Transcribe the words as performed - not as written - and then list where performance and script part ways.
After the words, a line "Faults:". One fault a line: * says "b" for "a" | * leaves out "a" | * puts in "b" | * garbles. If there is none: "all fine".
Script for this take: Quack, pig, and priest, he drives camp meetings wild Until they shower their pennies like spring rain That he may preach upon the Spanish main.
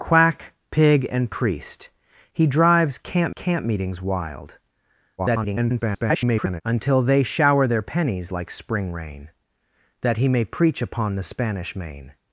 Quack, pig, and priest, he drives camp camp meetings wild [garbled] Until they shower their pennies like spring rain That he may preach upon the Spanish main.
Faults:
* puts in "camp"
* garbles